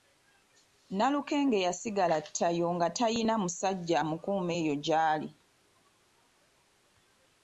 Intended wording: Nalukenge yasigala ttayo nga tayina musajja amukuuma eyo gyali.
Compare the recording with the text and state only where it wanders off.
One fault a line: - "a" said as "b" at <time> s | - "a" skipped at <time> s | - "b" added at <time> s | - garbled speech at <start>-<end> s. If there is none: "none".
none